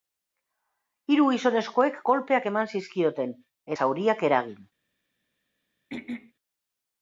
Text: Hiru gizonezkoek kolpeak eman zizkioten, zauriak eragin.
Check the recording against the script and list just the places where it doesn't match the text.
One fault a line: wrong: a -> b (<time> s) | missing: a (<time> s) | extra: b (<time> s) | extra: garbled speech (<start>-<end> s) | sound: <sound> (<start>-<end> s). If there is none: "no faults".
sound: throat clearing (5.9-6.3 s)